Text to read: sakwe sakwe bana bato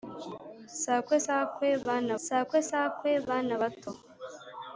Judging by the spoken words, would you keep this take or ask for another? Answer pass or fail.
fail